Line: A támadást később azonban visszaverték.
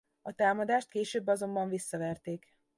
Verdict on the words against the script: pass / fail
pass